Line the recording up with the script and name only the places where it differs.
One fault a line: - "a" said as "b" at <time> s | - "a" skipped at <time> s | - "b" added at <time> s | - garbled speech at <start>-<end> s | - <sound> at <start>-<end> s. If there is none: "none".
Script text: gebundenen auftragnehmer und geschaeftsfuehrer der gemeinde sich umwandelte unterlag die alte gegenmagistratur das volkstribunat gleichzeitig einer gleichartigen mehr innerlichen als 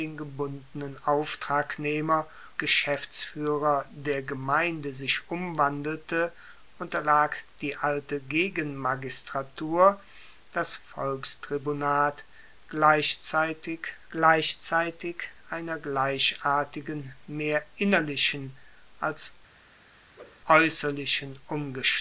- "und" skipped at 2.3 s
- "gleichzeitig" added at 14.1 s
- whoosh at 20.2-20.4 s